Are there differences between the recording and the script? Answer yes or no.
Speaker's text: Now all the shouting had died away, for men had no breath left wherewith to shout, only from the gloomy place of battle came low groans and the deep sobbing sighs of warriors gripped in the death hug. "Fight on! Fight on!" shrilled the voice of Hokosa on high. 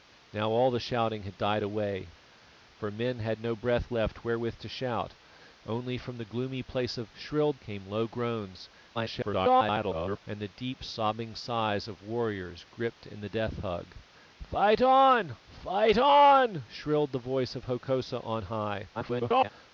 yes